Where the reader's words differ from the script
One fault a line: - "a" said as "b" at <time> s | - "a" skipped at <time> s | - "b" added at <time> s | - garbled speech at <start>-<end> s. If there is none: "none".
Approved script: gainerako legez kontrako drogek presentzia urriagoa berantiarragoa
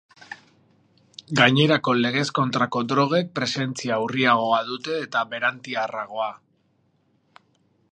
- "dute eta" added at 4.7 s